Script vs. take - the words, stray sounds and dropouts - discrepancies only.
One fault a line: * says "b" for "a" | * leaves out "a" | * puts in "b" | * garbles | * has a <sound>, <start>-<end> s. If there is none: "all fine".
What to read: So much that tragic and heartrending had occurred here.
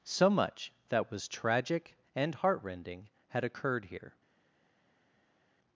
* puts in "was"